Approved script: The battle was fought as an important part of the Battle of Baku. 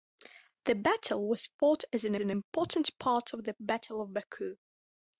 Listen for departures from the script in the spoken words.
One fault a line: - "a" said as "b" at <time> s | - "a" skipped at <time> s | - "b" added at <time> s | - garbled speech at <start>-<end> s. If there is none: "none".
- "an" added at 2.2 s